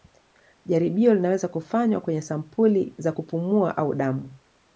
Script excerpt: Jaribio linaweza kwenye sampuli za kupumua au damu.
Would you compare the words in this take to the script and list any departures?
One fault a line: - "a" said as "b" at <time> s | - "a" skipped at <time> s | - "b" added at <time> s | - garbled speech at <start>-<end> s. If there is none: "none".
- "kufanywa" added at 1.5 s